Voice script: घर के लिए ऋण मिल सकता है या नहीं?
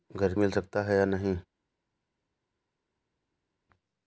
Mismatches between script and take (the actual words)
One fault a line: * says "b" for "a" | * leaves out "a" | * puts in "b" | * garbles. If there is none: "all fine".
* leaves out "के लिए ऋण"